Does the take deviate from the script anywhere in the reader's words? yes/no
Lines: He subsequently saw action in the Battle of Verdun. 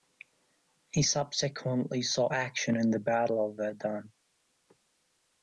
no